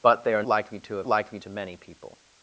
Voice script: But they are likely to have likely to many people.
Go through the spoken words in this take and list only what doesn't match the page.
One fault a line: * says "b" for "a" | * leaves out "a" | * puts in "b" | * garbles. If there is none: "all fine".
all fine